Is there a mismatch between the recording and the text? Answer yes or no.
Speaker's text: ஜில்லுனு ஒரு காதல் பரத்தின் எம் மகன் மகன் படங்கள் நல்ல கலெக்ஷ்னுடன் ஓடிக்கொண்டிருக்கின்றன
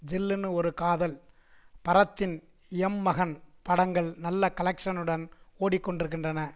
yes